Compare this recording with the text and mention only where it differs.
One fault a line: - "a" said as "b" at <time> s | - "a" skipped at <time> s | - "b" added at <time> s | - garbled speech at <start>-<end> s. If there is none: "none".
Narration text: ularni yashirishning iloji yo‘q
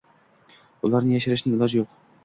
none